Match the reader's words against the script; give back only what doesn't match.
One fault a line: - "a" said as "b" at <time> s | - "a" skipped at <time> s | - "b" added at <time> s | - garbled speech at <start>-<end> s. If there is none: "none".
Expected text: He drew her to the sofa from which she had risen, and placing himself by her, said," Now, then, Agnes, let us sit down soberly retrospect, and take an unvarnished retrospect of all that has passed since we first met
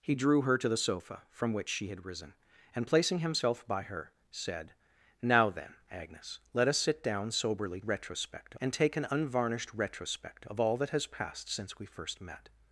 none